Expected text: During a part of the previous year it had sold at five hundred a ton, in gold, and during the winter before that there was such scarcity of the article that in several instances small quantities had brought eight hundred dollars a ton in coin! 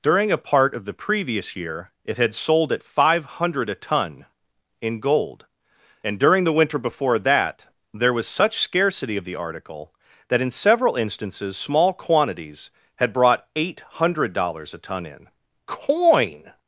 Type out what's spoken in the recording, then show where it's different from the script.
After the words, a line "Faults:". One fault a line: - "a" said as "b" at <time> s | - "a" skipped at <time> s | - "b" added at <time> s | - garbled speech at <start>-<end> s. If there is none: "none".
During a part of the previous year it had sold at five hundred a ton, in gold, and during the winter before that there was such scarcity of the article that in several instances small quantities had brought eight hundred dollars a ton in coin!
Faults:
none